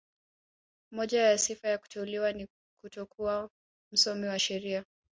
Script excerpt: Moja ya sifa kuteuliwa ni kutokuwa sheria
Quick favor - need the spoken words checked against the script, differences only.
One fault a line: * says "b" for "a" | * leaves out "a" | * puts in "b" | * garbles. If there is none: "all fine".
* puts in "ya"
* puts in "msomi wa"